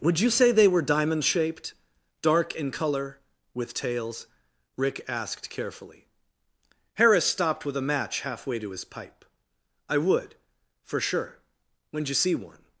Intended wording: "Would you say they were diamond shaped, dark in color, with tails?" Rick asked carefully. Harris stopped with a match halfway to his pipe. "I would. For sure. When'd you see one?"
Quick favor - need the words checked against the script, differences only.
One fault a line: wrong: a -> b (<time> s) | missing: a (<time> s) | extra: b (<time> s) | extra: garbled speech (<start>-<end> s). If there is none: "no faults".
no faults